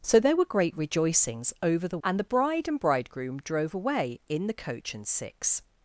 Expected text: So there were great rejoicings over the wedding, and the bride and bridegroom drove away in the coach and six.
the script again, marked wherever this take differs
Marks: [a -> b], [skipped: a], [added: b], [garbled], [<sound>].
So there were great rejoicings over the [skipped: wedding,] and the bride and bridegroom drove away in the coach and six.